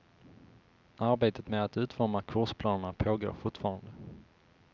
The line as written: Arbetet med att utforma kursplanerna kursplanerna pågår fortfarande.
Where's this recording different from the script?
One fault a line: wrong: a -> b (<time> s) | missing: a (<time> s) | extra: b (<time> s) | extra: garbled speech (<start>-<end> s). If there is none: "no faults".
missing: kursplanerna (2.9 s)